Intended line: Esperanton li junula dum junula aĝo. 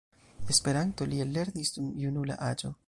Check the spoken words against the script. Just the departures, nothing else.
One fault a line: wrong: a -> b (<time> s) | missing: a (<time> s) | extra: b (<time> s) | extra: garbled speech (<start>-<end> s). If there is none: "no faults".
wrong: junula -> ellernis (1.3 s)